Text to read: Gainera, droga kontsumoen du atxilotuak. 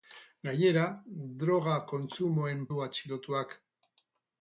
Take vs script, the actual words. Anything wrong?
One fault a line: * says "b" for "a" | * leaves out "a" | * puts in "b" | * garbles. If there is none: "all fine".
all fine